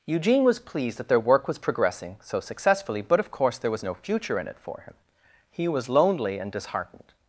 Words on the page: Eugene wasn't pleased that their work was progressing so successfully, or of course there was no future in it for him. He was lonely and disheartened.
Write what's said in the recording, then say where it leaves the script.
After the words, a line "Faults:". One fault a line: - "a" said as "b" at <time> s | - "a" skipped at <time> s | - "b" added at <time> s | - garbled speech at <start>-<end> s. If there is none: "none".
Eugene was pleased that their work was progressing so successfully, but of course there was no future in it for him. He was lonely and disheartened.
Faults:
- "wasn't" said as "was" at 0.4 s
- "or" said as "but" at 3.0 s